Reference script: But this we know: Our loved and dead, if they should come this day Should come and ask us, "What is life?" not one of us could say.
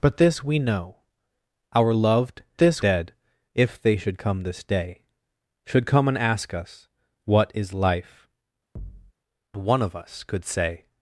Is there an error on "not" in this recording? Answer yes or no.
yes